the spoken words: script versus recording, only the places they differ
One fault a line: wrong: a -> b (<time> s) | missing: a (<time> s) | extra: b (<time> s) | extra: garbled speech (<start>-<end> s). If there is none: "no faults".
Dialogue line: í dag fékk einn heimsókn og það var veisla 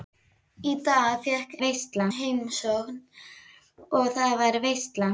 wrong: einn -> veisla (1.6 s)